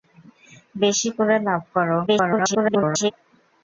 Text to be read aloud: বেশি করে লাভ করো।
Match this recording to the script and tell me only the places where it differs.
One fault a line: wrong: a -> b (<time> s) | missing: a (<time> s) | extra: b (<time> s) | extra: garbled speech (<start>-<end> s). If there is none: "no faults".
extra: garbled speech (2.1-3.1 s)